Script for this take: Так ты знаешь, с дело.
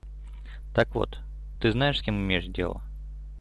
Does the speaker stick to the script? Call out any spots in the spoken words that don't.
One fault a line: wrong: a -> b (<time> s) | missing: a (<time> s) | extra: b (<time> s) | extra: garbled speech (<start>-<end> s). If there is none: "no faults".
extra: вот (0.9 s)
extra: кем имеешь (2.0 s)